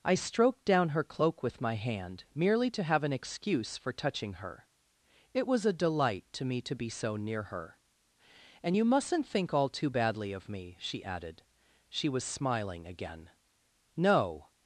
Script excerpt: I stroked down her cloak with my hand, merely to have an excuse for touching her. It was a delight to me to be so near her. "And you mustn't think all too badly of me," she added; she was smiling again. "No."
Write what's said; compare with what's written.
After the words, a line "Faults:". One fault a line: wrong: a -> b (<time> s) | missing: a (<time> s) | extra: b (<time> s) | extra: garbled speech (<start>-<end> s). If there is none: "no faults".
I stroked down her cloak with my hand, merely to have an excuse for touching her. It was a delight to me to be so near her. "And you mustn't think all too badly of me," she added; she was smiling again. "No."
Faults:
no faults